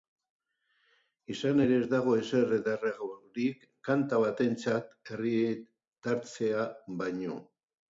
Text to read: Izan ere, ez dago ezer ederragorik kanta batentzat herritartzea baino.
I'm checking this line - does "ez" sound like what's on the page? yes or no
yes